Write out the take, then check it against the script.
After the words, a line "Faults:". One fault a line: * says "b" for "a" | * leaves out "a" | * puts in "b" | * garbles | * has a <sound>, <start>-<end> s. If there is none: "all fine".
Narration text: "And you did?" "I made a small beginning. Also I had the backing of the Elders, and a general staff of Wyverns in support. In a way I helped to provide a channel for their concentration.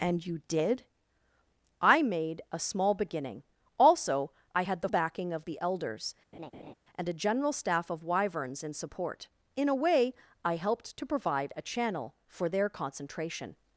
"And you did?" "I made a small beginning. Also I had the backing of the Elders, and a general staff of Wyverns in support. In a way I helped to provide a channel for their concentration.
Faults:
* has a laugh, 6.3-6.7 s